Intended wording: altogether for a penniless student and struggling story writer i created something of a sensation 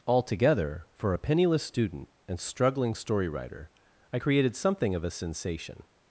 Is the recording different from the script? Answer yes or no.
no